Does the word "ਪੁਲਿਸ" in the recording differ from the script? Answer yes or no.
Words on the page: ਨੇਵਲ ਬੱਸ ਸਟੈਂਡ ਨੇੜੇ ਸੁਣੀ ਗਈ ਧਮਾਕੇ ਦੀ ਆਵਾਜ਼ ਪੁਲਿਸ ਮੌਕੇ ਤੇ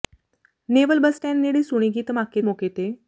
yes